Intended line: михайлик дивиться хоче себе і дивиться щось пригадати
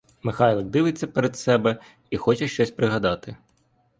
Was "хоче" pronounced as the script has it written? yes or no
no